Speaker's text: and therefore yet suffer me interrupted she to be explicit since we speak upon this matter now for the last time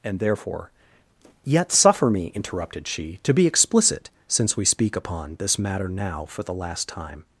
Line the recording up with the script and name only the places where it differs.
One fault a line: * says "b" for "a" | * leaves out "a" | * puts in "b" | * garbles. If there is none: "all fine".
all fine